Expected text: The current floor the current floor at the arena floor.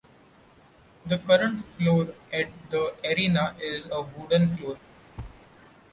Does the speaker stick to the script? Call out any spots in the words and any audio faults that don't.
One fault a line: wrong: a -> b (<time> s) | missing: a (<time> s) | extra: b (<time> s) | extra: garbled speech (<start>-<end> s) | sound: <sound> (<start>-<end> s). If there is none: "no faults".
extra: at (2.3 s)
wrong: current floor at the arena -> arena is a wooden (3.0 s)
sound: thud (5.2-5.4 s)